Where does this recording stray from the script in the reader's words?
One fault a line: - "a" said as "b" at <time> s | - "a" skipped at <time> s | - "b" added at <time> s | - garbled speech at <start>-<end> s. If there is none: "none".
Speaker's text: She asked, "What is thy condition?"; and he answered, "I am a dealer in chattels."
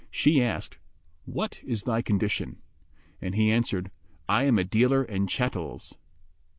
none